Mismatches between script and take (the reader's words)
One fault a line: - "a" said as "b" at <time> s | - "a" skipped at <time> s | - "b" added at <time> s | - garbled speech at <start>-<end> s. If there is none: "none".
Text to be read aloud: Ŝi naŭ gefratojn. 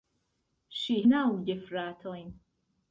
none